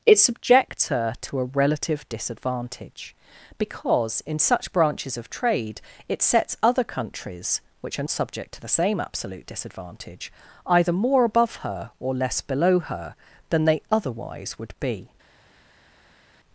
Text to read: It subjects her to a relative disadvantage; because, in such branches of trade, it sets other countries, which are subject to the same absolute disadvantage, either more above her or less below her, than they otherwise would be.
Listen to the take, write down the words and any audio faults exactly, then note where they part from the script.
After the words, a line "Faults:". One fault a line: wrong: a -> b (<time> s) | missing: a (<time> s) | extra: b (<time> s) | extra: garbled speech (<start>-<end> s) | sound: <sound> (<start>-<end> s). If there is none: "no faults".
It subjects her to a relative disadvantage; because, in such branches of trade, it sets other countries, which are subject to the same absolute disadvantage, either more above her or less below her, than they otherwise would be.
Faults:
no faults